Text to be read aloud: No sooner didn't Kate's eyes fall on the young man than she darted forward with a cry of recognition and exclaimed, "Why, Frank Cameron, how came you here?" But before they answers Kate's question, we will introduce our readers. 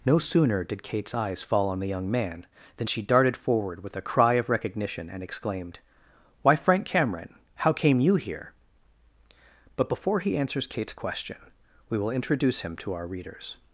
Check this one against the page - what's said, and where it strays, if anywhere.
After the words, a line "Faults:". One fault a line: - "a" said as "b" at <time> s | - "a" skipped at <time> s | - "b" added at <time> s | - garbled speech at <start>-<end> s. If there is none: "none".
No sooner did Kate's eyes fall on the young man than she darted forward with a cry of recognition and exclaimed, "Why, Frank Cameron, how came you here?" But before he answers Kate's question, we will introduce him to our readers.
Faults:
- "didn't" said as "did" at 0.6 s
- "they" said as "he" at 10.2 s
- "him to" added at 12.6 s